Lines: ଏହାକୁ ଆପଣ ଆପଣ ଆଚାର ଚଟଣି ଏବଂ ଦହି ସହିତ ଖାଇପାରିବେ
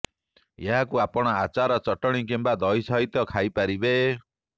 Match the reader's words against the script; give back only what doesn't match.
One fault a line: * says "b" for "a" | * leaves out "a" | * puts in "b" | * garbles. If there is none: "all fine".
* leaves out "ଆପଣ"
* says "କିମ୍ବା" for "ଏବଂ"